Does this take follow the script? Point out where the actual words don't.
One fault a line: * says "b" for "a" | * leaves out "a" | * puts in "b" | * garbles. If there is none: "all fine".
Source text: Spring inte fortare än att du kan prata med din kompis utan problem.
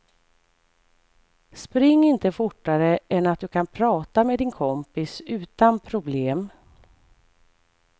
all fine